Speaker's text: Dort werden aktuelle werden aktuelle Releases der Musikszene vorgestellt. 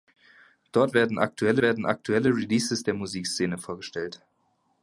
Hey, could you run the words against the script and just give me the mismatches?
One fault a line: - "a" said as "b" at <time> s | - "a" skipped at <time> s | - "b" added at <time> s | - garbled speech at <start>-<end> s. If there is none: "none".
none